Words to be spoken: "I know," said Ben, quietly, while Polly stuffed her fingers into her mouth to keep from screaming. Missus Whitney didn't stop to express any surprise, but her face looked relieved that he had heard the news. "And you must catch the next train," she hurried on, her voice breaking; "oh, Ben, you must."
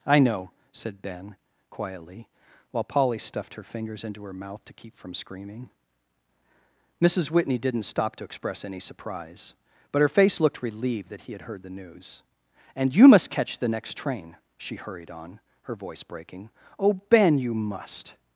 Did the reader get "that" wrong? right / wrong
right